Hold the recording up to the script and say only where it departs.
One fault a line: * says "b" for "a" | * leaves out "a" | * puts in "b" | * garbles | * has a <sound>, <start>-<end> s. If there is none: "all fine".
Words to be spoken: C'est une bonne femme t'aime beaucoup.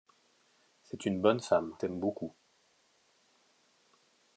all fine